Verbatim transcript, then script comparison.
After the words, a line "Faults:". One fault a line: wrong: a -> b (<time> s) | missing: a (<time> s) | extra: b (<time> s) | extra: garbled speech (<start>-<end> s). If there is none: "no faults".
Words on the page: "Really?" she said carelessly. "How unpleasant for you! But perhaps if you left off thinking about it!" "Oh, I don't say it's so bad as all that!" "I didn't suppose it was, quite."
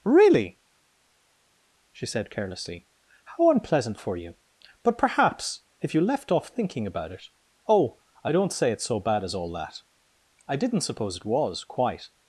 "Really?" she said carelessly. "How unpleasant for you! But perhaps if you left off thinking about it!" "Oh, I don't say it's so bad as all that!" "I didn't suppose it was, quite."
Faults:
no faults